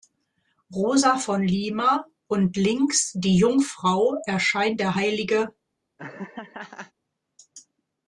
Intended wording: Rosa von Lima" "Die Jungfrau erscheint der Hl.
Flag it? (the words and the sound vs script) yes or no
yes